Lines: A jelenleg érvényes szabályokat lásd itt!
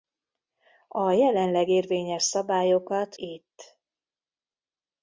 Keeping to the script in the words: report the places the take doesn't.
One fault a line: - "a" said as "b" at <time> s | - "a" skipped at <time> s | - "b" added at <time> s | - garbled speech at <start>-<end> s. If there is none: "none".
- "lásd" skipped at 3.2 s